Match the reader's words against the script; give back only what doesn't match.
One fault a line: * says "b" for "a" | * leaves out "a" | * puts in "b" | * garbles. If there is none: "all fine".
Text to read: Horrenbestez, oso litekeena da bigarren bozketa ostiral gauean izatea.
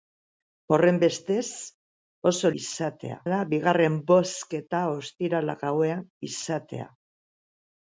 * says "izatea" for "litekeena"